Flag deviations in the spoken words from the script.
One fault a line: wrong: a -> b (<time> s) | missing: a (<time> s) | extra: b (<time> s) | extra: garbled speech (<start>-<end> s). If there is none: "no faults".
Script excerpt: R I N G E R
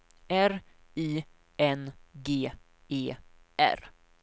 no faults